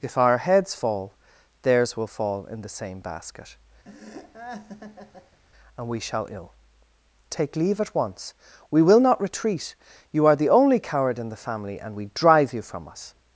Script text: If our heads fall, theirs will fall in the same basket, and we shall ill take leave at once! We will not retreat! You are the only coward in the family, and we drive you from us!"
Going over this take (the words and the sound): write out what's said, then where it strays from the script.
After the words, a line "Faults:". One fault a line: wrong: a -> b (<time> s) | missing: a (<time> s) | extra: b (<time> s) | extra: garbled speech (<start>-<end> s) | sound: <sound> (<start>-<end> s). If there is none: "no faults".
If our heads fall, theirs will fall in the same basket, and we shall ill take leave at once! We will not retreat! You are the only coward in the family, and we drive you from us!"
Faults:
sound: laugh (3.8-5.4 s)